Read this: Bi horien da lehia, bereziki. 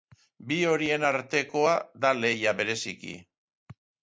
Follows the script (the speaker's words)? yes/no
no